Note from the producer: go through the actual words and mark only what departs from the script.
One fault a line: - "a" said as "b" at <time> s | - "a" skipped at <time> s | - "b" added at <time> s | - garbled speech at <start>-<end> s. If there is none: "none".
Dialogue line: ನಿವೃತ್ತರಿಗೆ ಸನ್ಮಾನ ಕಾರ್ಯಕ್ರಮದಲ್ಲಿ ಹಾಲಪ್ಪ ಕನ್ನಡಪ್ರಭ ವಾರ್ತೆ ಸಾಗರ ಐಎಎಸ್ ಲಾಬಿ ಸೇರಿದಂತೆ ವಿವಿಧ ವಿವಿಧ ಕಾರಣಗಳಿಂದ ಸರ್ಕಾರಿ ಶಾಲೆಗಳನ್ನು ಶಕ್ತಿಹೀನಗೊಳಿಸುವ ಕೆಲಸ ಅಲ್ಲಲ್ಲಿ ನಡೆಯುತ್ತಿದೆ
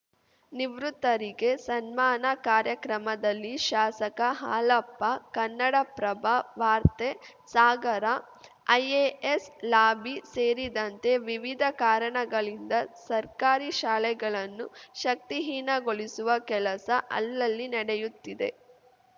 - "ಶಾಸಕ" added at 3.6 s
- "ವಿವಿಧ" skipped at 11.6 s